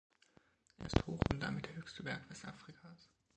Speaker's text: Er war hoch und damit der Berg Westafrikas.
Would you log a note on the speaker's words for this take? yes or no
yes